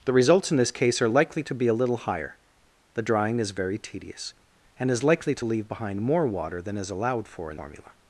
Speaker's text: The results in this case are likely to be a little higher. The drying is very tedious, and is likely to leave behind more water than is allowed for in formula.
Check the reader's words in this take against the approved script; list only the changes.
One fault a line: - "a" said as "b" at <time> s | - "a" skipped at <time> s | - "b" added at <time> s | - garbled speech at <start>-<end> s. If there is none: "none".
none